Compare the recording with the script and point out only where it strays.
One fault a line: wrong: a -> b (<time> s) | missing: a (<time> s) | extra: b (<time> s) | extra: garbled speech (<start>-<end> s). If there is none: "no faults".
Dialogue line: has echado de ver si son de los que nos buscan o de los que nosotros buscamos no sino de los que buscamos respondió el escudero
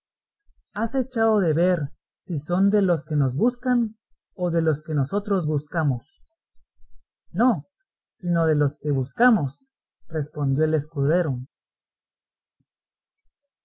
no faults